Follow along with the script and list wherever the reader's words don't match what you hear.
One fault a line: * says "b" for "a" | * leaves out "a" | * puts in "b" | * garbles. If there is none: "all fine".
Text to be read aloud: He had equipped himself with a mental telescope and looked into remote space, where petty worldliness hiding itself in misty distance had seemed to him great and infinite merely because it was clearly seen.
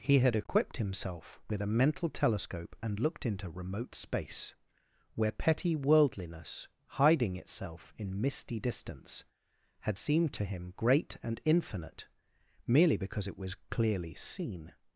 all fine